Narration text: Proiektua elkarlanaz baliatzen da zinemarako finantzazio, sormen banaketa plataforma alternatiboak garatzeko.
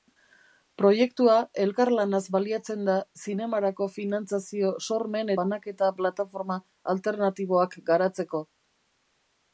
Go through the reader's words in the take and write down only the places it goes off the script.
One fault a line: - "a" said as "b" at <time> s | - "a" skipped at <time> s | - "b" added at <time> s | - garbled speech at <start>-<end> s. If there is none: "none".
none